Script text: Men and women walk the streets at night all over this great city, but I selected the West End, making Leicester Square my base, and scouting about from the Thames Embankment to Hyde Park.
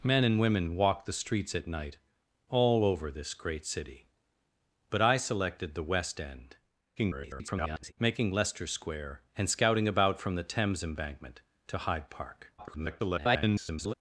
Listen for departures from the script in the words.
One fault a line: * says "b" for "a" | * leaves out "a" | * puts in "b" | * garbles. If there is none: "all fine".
* garbles
* leaves out "my base"
* garbles